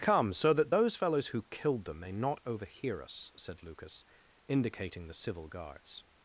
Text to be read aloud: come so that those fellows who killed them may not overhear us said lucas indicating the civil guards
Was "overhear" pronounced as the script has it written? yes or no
yes